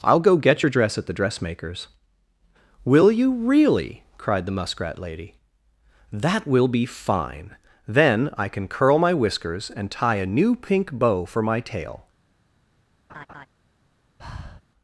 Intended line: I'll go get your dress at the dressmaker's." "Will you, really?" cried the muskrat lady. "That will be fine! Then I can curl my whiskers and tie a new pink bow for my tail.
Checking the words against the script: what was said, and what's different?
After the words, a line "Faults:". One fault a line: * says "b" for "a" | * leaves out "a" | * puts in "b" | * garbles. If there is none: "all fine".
I'll go get your dress at the dressmaker's." "Will you, really?" cried the muskrat lady. "That will be fine! Then I can curl my whiskers and tie a new pink bow for my tail.
Faults:
all fine